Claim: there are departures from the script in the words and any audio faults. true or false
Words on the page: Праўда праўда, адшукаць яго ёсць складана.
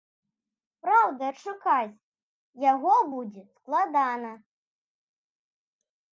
true